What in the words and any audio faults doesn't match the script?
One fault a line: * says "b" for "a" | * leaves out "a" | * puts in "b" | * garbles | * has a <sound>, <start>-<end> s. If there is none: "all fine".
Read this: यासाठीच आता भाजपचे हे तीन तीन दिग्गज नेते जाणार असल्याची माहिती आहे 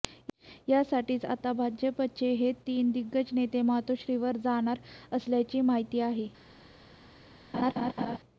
* leaves out "तीन"
* puts in "मातोश्रीवर"
* has a laugh, 7.5-8.2 s